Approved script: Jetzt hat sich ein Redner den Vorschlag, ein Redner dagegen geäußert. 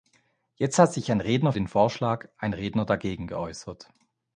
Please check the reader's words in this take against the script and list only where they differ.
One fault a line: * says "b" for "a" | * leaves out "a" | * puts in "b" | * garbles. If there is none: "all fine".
all fine